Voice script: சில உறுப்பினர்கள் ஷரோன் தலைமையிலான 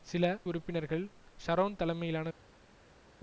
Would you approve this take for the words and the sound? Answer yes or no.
yes